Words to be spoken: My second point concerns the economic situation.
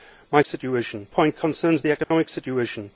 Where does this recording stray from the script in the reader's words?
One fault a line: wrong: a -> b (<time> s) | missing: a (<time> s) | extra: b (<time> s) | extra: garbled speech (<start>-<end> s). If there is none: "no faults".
wrong: second -> situation (0.4 s)